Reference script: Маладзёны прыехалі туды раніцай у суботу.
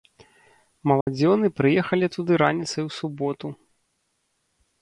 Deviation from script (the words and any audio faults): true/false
true